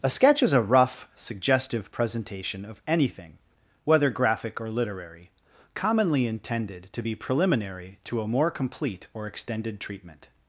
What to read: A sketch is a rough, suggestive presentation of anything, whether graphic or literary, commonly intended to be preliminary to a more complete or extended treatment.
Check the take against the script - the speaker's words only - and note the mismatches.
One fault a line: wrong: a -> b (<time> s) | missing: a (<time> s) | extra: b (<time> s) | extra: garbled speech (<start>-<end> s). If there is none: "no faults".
no faults